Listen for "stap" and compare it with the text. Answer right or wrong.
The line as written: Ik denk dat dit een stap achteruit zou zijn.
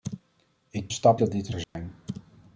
wrong